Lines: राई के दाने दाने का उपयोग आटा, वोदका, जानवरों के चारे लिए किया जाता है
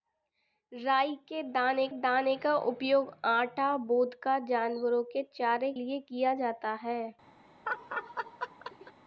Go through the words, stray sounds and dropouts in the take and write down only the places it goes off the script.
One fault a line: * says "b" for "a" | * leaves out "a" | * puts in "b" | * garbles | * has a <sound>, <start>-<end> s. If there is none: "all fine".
* has a laugh, 7.6-8.9 s